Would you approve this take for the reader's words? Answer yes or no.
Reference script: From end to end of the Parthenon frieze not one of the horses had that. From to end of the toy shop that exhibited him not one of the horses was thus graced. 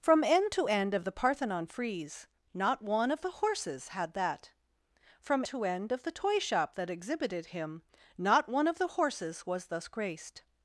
yes